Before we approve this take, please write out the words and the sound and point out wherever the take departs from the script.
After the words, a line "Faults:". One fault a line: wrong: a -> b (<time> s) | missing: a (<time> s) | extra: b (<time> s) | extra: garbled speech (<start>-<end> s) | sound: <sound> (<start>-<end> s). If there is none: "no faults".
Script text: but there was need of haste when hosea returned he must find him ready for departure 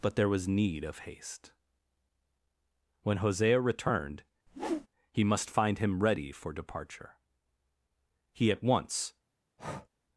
but there was need of haste when hosea returned he must find him ready for departure he at once
Faults:
sound: whoosh (4.5-4.9 s)
extra: he at once (8.3 s)
sound: breath (9.6-9.9 s)